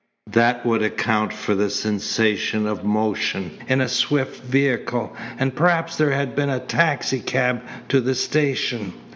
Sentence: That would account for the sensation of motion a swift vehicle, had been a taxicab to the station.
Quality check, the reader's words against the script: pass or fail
fail